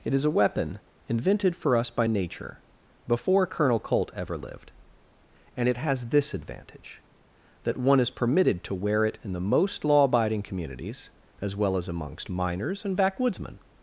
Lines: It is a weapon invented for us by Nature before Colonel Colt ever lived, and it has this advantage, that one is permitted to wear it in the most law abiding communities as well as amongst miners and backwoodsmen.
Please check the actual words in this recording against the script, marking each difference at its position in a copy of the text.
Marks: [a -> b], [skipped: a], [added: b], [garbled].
It is a weapon invented for us by Nature before Colonel Colt ever lived, and it has this advantage, that one is permitted to wear it in the most law abiding communities as well as amongst miners and backwoodsmen.